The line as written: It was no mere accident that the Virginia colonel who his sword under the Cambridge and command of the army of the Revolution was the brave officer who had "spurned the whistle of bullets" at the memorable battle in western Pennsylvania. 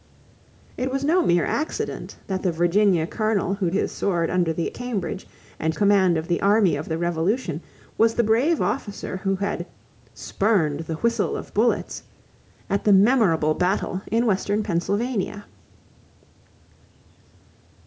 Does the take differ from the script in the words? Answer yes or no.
no